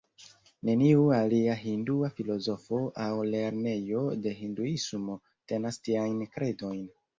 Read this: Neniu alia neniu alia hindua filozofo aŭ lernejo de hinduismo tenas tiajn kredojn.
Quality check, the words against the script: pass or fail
fail